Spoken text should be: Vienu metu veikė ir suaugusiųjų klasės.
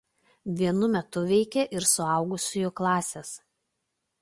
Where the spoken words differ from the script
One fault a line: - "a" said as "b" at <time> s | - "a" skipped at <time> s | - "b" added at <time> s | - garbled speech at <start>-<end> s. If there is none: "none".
none